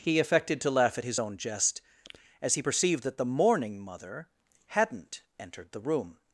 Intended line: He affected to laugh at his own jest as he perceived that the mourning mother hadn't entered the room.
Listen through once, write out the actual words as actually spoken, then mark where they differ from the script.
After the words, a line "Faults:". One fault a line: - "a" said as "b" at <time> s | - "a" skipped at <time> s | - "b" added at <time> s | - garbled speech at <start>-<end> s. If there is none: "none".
He affected to laugh at his own jest as he perceived that the mourning mother hadn't entered the room.
Faults:
none